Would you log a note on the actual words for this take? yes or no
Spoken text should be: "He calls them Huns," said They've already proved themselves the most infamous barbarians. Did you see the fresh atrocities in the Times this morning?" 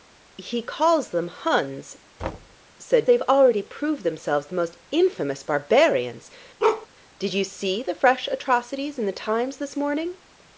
no